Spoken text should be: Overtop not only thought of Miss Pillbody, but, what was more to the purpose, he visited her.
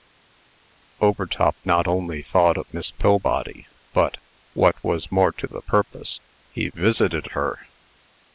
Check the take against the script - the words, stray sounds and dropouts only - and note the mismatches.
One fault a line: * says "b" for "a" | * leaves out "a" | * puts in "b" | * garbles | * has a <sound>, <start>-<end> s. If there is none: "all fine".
all fine